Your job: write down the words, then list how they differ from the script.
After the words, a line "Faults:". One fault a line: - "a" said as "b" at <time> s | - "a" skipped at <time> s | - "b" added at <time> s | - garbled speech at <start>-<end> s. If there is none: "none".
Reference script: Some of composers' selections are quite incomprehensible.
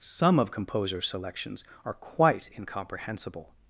Some of composers' selections are quite incomprehensible.
Faults:
none